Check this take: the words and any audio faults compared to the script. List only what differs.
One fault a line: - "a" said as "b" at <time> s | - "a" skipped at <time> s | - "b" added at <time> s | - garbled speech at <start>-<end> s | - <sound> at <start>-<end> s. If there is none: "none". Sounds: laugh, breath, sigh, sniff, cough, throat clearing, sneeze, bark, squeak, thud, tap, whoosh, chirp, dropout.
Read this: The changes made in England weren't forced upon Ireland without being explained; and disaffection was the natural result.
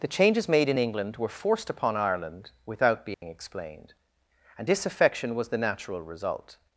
- "weren't" said as "were" at 1.2 s
- dropout at 3.1-3.2 s